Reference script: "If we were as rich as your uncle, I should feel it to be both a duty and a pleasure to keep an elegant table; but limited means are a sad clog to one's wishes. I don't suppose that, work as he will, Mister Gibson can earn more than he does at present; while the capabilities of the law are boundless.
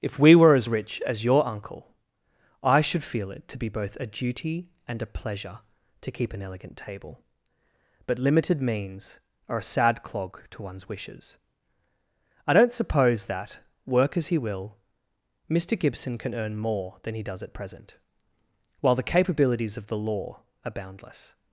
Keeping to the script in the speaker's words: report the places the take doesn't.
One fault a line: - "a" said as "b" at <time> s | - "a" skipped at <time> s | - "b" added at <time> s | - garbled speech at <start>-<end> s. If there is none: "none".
none